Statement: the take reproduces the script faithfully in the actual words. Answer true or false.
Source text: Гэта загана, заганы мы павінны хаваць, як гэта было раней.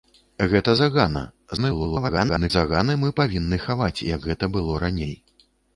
false